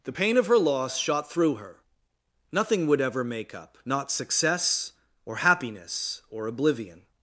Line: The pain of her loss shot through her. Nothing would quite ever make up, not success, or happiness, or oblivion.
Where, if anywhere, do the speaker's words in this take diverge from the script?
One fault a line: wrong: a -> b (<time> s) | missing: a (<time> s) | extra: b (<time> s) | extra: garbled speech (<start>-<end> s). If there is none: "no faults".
missing: quite (3.0 s)